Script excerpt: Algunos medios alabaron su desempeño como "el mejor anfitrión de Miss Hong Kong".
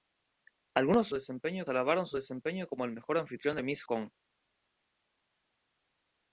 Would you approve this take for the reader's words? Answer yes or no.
no